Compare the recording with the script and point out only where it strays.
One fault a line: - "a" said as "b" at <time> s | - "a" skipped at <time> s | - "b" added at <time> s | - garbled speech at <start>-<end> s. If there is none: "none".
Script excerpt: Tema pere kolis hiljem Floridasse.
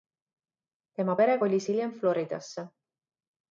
none